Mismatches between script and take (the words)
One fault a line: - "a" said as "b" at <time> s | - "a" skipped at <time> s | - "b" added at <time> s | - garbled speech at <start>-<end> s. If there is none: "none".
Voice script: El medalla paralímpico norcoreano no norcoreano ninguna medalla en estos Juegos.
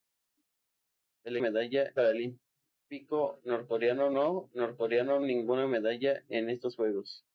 none